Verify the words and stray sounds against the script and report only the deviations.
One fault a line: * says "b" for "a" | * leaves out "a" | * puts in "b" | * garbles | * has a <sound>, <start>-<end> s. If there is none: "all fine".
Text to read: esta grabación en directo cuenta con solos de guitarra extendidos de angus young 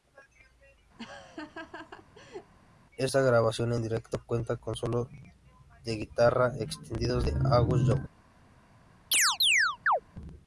* has a laugh, 1.0-2.5 s
* has a chirp, 9.1-10.0 s